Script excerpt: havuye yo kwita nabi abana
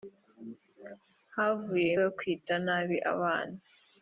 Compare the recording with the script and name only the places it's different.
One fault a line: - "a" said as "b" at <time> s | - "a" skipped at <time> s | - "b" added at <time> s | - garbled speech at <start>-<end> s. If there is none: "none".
none